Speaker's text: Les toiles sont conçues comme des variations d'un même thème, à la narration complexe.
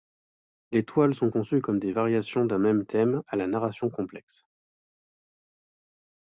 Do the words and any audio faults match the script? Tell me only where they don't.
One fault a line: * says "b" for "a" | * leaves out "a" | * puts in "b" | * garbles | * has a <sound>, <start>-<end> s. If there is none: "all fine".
all fine